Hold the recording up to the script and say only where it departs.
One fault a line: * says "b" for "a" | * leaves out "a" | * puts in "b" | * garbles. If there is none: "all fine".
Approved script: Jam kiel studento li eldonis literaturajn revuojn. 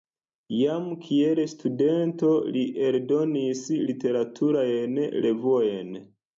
all fine